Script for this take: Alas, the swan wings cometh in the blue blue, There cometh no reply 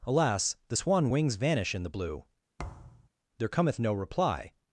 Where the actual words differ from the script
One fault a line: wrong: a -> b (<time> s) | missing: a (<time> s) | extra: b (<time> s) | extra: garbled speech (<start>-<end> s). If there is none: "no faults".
wrong: cometh -> vanish (1.4 s)
missing: blue (2.3 s)